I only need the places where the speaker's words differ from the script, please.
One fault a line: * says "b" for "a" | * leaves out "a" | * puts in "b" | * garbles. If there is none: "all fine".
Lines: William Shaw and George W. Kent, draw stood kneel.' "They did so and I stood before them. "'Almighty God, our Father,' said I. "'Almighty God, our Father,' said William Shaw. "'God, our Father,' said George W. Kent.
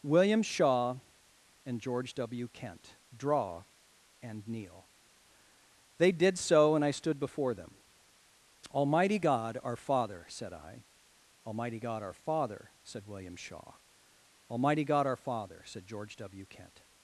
* says "and" for "stood"
* puts in "Almighty"